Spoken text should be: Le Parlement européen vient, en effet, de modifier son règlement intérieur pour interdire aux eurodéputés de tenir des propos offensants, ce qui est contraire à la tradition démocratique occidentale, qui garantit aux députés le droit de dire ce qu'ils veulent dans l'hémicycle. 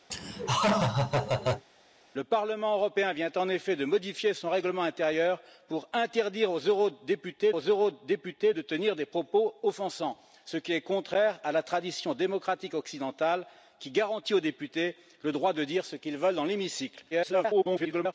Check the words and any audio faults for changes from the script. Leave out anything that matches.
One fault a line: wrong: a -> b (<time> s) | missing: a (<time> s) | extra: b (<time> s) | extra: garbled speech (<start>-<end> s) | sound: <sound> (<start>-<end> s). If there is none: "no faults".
sound: laugh (0.1-1.7 s)
extra: aux eurodéputés (7.5 s)
extra: garbled speech (17.1-18.1 s)